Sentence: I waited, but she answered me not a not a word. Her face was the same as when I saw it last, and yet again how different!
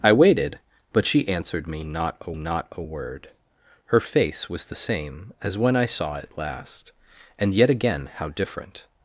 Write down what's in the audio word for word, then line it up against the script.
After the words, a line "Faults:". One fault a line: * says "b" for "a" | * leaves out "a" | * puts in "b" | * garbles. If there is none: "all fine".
I waited, but she answered me not a not a word. Her face was the same as when I saw it last, and yet again how different!
Faults:
all fine